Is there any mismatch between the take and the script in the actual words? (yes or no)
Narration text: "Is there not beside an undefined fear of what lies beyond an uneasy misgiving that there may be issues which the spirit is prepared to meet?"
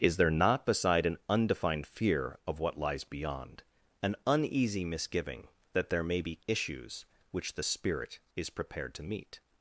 no